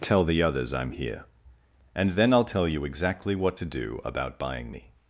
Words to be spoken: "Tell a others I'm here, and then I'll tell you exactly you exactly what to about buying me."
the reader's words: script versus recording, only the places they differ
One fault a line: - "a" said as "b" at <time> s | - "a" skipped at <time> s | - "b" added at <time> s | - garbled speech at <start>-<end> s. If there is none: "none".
- "a" said as "the" at 0.2 s
- "you exactly" skipped at 3.4 s
- "do" added at 3.6 s